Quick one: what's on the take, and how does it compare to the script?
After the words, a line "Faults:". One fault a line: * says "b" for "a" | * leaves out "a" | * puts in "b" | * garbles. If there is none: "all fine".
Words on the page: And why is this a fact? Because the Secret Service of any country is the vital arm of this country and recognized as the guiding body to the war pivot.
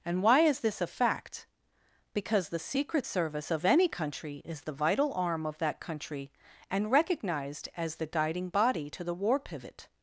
And why is this a fact? Because the Secret Service of any country is the vital arm of that country and recognized as the guiding body to the war pivot.
Faults:
* says "that" for "this"